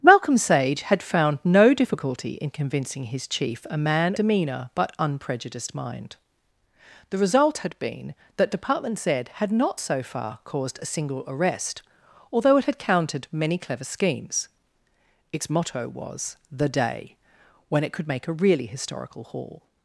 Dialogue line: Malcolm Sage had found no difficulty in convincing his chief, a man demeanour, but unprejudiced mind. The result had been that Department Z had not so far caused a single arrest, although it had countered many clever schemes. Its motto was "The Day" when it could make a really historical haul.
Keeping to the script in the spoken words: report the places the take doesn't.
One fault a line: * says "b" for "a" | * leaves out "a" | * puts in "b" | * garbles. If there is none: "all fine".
all fine